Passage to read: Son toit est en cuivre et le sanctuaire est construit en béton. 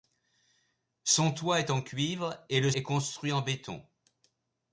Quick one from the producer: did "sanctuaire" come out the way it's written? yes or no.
no